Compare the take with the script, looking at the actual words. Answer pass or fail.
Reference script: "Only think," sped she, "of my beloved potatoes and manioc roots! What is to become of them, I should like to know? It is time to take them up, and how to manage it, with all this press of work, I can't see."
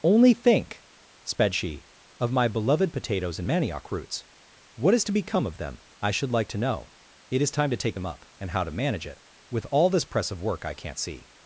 pass